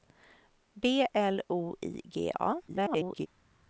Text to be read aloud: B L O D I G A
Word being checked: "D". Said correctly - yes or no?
no